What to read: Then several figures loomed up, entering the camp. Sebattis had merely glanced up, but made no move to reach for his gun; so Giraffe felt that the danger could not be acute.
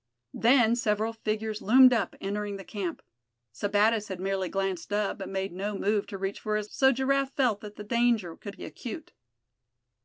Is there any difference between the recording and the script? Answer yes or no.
yes